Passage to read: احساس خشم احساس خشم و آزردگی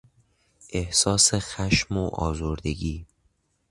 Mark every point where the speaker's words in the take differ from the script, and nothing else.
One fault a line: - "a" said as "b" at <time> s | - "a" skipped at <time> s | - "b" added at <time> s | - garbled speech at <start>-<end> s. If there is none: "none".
- "احساس خشم" skipped at 2.0 s